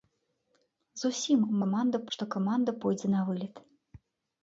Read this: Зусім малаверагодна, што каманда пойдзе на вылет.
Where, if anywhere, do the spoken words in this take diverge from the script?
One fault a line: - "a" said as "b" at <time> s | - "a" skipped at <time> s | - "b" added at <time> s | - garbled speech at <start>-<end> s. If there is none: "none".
- "малаверагодна" said as "каманда" at 1.6 s